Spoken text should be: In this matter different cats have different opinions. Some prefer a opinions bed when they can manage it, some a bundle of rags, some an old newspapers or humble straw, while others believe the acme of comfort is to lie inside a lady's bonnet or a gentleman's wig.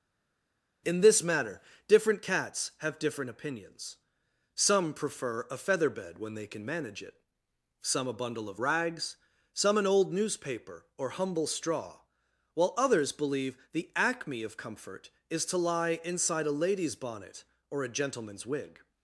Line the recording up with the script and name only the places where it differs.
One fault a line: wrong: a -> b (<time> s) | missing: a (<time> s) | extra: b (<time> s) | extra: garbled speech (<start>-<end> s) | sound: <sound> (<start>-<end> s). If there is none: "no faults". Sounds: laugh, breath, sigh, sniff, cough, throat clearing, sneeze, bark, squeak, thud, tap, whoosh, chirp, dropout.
wrong: opinions -> feather (5.6 s)
wrong: newspapers -> newspaper (10.1 s)